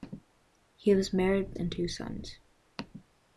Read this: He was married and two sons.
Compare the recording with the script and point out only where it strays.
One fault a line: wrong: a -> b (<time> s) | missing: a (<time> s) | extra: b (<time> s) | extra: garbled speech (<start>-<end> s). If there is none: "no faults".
no faults